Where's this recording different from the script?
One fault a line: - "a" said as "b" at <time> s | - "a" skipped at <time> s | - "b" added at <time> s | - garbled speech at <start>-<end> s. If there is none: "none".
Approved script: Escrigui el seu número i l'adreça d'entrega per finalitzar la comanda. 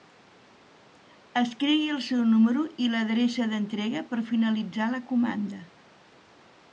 none